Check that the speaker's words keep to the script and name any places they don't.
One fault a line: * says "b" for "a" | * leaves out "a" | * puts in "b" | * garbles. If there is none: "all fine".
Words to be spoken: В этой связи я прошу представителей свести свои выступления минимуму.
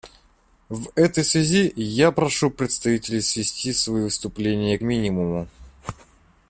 all fine